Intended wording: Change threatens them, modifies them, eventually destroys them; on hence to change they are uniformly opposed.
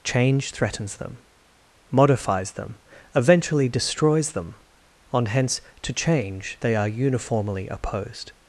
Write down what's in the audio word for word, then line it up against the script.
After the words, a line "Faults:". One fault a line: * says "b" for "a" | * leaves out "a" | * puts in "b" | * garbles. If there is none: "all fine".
Change threatens them, modifies them, eventually destroys them; on hence to change they are uniformly opposed.
Faults:
all fine